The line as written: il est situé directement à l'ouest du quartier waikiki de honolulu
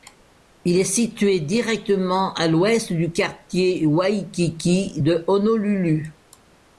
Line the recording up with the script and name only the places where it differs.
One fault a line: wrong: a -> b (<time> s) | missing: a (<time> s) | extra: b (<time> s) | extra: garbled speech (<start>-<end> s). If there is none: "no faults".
no faults